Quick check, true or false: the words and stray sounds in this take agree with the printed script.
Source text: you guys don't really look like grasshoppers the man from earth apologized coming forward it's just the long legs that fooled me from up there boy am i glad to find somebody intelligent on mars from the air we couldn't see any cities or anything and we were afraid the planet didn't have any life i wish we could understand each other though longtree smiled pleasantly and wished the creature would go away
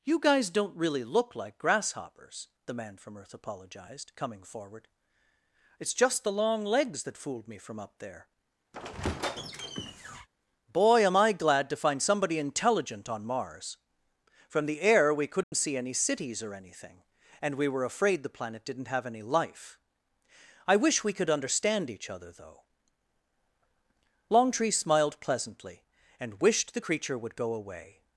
false